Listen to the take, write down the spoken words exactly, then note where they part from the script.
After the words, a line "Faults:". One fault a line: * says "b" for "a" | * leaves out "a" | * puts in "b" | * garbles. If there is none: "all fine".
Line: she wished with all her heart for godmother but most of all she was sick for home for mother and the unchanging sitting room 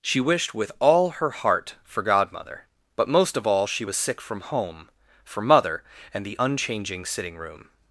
she wished with all her heart for godmother but most of all she was sick from home for mother and the unchanging sitting room
Faults:
* says "from" for "for"